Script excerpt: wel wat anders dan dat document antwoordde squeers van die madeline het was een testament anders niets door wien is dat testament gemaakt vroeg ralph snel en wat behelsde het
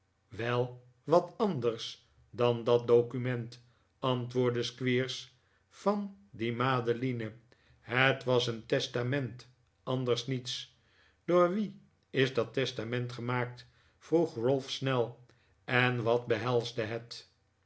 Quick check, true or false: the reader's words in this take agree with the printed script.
true